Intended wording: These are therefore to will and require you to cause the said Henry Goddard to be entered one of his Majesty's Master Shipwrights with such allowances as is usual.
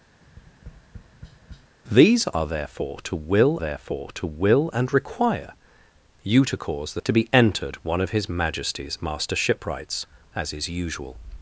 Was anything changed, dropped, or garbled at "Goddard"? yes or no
yes